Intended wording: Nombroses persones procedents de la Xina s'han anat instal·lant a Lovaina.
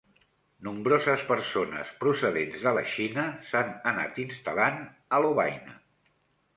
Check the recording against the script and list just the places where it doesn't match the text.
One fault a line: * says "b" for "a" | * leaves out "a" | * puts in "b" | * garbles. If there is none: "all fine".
all fine